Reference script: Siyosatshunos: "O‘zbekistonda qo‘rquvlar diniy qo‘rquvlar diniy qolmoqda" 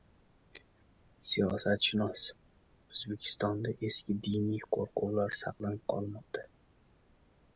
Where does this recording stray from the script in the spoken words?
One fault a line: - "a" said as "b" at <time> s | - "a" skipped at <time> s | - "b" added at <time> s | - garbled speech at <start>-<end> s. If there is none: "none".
- "qo‘rquvlar" said as "eski" at 3.9 s
- "diniy" said as "saqlanib" at 5.4 s